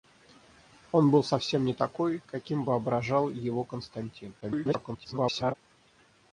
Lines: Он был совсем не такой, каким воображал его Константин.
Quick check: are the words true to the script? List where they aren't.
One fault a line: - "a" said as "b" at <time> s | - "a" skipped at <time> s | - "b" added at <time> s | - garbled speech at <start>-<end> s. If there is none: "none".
- garbled speech at 4.4-5.5 s